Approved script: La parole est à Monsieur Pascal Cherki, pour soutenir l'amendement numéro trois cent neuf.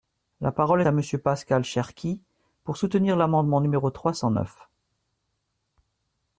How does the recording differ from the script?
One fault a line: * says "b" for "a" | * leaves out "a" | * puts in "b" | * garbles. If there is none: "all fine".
* leaves out "est"